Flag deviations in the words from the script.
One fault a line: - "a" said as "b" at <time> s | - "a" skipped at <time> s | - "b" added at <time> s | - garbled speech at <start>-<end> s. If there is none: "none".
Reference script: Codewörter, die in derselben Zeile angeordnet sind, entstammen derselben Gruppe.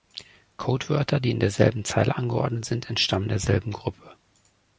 none